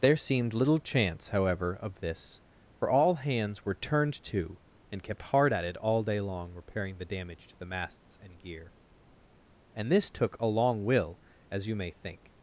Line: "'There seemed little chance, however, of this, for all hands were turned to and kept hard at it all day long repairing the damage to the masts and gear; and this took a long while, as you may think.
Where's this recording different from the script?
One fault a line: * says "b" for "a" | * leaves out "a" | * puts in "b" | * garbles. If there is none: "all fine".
* says "will" for "while"